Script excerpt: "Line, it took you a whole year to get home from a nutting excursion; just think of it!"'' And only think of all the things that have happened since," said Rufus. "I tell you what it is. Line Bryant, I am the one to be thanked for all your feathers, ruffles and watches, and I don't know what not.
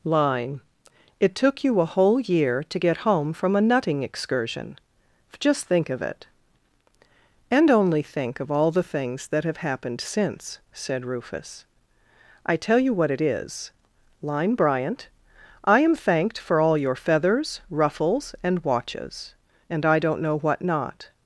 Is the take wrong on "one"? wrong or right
wrong